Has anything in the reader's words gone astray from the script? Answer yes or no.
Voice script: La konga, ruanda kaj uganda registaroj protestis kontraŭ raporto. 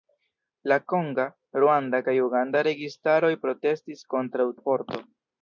no